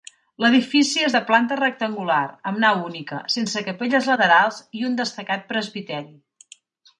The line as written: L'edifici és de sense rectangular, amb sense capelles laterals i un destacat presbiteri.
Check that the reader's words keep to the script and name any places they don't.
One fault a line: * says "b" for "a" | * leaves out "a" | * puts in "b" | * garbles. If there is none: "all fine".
* says "planta" for "sense"
* puts in "nau única"